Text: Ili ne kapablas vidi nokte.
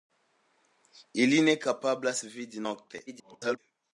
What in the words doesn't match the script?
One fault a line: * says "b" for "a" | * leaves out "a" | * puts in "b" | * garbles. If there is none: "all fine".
* garbles